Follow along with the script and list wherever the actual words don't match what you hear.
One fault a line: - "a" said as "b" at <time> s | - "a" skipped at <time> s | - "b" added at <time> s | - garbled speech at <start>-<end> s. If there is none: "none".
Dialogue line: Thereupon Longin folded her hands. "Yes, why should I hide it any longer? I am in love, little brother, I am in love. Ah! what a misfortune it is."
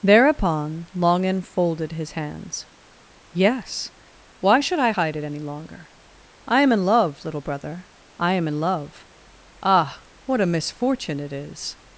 - "her" said as "his" at 1.9 s